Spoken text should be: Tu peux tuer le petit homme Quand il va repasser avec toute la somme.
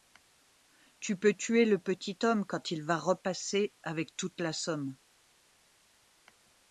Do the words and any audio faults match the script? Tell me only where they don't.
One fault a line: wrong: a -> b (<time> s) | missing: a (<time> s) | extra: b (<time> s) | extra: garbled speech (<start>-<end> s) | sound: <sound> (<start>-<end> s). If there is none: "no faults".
no faults